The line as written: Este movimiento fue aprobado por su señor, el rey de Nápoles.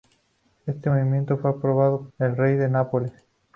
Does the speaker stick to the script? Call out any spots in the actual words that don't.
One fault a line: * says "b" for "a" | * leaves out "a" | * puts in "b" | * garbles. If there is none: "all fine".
* leaves out "por su señor"